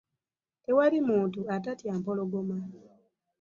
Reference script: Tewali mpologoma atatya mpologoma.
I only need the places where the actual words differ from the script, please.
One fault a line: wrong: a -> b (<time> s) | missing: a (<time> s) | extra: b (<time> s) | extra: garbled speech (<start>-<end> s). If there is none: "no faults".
wrong: mpologoma -> muntu (1.1 s)